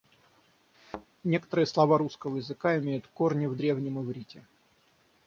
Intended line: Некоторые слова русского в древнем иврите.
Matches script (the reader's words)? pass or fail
fail